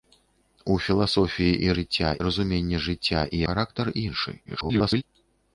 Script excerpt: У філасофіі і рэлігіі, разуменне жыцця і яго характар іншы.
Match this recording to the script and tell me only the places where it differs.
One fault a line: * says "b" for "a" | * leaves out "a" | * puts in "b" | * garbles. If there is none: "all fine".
* says "жыцця" for "рэлігіі"
* leaves out "яго"
* garbles